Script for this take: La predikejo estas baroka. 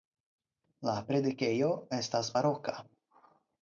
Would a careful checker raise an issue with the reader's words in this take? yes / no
no